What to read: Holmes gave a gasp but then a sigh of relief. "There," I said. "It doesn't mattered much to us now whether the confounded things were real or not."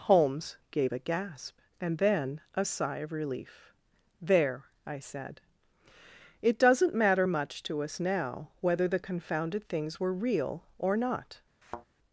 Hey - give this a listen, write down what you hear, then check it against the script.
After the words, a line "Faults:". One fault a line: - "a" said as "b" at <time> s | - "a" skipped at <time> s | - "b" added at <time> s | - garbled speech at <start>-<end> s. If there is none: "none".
Holmes gave a gasp and then a sigh of relief. "There," I said. "It doesn't matter much to us now whether the confounded things were real or not."
Faults:
- "but" said as "and" at 1.8 s
- "mattered" said as "matter" at 6.9 s